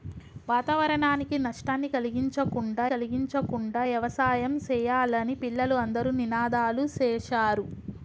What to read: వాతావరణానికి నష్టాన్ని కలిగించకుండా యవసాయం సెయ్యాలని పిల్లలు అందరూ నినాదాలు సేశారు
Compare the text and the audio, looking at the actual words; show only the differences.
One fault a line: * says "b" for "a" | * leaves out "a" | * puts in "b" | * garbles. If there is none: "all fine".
* puts in "కలిగించకుండా"